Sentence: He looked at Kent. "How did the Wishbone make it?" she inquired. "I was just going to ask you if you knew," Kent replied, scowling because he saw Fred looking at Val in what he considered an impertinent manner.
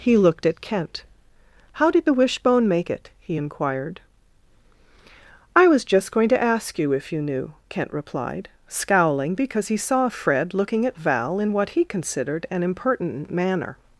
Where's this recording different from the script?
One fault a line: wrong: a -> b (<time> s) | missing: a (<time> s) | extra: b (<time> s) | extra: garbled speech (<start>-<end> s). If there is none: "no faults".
wrong: she -> he (3.2 s)